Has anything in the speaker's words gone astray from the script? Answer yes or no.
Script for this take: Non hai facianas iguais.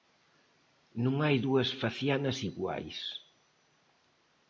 yes